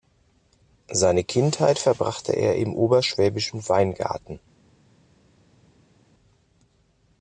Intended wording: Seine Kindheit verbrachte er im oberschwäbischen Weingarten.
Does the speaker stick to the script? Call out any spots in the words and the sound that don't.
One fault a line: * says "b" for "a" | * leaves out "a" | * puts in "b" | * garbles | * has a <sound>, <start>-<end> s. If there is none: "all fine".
all fine